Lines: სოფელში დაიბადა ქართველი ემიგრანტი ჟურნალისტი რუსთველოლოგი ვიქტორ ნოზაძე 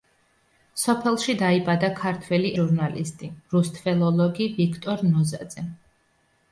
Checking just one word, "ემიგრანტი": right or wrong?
wrong